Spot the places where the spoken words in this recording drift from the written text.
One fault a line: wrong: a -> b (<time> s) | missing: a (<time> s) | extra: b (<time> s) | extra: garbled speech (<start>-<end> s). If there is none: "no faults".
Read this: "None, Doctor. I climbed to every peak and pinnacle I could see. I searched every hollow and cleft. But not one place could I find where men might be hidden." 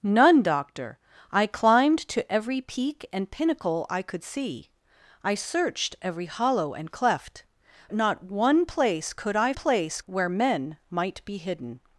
missing: But (7.5 s)
wrong: find -> place (9.5 s)